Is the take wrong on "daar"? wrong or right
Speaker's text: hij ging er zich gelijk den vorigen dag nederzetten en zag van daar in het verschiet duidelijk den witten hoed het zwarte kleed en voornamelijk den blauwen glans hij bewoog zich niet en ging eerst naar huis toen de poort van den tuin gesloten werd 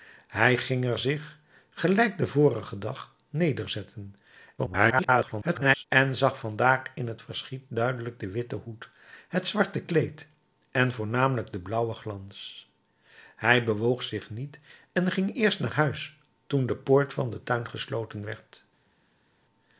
right